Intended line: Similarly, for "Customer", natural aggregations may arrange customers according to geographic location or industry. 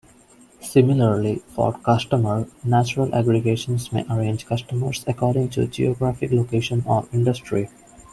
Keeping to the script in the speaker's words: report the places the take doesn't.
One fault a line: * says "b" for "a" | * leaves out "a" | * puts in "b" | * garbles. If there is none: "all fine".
all fine